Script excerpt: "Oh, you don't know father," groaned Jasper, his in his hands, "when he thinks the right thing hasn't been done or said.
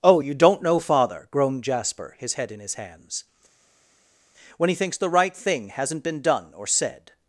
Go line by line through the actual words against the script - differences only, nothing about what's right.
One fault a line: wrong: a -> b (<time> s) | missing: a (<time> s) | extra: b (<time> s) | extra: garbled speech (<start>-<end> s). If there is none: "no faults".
extra: head (2.3 s)